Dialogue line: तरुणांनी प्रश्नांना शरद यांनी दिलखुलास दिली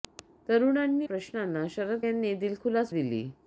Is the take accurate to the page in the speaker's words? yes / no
yes